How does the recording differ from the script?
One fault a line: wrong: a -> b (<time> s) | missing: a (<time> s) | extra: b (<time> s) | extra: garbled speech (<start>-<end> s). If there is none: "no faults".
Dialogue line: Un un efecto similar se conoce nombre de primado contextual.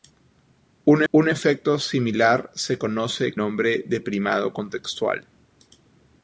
no faults